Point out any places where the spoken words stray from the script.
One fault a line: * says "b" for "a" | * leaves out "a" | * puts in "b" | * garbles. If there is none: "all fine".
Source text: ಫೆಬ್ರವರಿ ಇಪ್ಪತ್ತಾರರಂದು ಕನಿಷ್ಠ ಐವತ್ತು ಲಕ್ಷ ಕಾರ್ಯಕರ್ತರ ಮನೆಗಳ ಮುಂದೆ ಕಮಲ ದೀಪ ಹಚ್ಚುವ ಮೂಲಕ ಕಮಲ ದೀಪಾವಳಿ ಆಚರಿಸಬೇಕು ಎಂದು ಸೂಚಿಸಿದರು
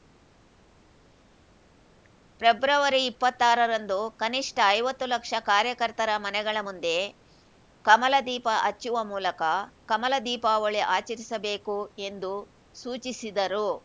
all fine